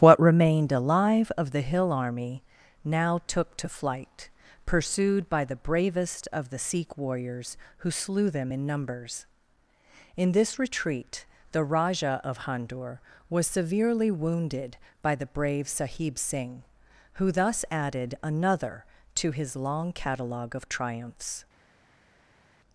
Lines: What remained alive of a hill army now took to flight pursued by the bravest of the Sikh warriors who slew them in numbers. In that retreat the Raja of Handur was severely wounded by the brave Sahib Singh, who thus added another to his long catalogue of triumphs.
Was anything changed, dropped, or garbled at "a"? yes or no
yes